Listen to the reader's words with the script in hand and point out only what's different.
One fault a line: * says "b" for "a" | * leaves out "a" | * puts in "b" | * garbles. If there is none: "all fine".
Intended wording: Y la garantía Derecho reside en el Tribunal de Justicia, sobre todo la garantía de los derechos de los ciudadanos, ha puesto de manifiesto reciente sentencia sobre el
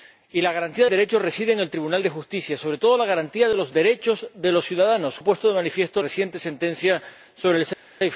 all fine